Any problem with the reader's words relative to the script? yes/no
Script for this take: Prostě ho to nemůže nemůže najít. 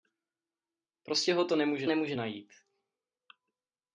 no